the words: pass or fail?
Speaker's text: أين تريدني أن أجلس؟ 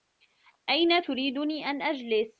pass